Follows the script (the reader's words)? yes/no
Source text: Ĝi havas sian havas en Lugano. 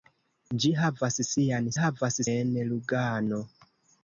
yes